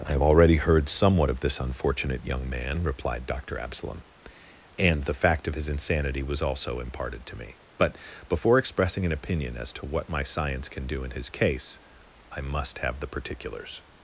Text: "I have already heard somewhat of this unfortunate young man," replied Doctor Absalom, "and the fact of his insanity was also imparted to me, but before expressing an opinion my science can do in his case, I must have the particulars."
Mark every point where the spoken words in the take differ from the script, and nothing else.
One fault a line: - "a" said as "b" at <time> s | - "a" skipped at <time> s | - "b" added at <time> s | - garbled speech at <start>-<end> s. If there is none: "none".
- "as to what" added at 9.6 s